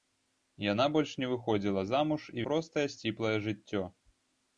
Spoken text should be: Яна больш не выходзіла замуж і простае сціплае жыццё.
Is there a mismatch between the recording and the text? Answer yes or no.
no